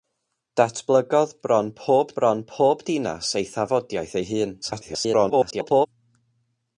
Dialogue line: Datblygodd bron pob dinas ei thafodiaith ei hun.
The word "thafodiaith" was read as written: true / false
true